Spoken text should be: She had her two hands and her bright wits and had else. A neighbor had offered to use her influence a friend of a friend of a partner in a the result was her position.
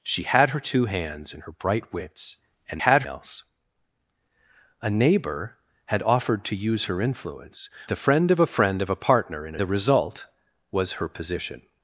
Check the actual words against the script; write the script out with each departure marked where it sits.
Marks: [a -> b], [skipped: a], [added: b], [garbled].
She had her two hands and her bright wits and had else. A neighbor had offered to use her influence a friend of a friend of a partner in a the result was her position.